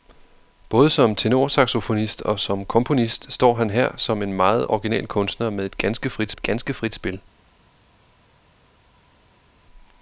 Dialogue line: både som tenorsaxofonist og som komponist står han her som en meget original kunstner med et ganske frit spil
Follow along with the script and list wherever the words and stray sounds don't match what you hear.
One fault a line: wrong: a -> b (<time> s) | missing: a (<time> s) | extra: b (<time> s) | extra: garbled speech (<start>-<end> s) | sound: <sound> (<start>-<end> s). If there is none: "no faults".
extra: et ganske frit (6.3 s)